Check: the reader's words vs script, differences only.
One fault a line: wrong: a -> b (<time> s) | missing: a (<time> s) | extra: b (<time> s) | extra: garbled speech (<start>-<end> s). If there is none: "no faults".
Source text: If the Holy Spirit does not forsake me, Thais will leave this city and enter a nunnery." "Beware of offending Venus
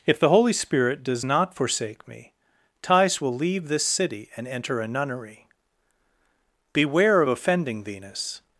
no faults